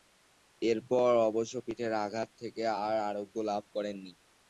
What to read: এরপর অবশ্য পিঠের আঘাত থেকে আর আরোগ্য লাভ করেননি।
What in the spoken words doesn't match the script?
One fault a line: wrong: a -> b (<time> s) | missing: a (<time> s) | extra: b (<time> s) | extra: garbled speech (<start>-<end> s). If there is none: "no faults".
no faults